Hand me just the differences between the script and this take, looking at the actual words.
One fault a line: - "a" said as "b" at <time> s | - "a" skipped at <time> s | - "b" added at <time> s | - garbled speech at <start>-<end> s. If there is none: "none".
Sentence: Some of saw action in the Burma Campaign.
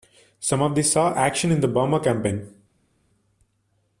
- "these" added at 0.7 s